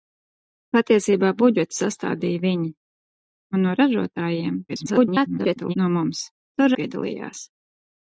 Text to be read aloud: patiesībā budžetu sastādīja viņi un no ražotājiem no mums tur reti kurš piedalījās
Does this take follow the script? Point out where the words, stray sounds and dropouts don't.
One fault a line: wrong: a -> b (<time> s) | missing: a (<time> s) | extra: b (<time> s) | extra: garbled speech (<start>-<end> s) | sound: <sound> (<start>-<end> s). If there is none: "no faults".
extra: garbled speech (4.7-5.7 s)
missing: reti kurš (6.7 s)